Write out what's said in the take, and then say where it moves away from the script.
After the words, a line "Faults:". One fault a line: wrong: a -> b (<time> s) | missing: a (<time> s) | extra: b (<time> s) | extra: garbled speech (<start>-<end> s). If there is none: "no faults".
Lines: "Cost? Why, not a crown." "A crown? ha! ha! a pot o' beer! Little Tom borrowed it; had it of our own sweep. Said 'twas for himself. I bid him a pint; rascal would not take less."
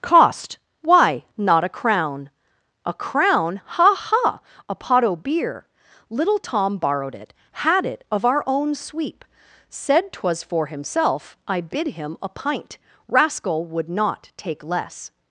"Cost? Why, not a crown." "A crown? ha! ha! a pot o' beer! Little Tom borrowed it; had it of our own sweep. Said 'twas for himself. I bid him a pint; rascal would not take less."
Faults:
no faults